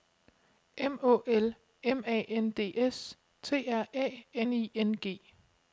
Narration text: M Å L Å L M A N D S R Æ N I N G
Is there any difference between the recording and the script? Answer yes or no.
yes